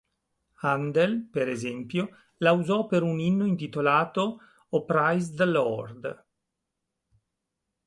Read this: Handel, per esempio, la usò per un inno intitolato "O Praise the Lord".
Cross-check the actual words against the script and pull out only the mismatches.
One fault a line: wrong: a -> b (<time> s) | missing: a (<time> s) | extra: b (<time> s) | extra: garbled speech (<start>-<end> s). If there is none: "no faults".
no faults